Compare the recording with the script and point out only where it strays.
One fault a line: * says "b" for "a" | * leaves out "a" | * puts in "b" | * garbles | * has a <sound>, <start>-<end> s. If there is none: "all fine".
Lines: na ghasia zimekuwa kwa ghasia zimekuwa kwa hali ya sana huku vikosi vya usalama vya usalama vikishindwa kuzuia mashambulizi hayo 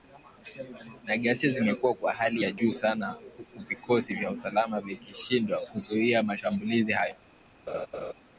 * leaves out "ghasia zimekuwa kwa"
* puts in "juu"
* leaves out "vya usalama"
* has a laugh, 7.7-8.1 s